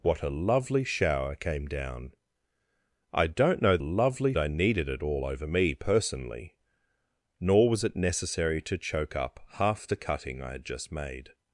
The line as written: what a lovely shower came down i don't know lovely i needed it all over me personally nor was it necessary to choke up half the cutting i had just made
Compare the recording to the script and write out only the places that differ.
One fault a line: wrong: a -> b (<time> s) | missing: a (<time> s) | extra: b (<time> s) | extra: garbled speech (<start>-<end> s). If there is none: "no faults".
no faults